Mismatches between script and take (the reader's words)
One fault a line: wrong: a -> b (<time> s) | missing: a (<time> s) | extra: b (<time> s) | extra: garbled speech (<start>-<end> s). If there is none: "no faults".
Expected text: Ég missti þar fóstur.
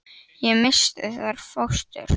no faults